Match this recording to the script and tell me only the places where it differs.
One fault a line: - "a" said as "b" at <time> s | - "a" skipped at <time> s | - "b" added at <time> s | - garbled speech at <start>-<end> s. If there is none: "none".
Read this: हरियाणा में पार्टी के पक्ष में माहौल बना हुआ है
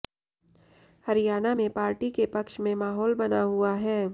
none